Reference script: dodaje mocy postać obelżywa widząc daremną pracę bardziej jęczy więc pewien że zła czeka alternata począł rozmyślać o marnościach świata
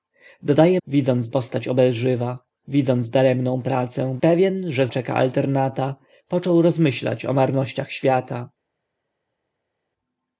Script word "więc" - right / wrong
wrong